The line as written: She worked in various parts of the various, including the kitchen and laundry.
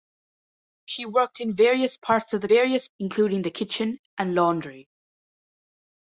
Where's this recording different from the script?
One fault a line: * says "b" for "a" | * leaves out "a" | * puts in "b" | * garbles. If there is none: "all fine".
all fine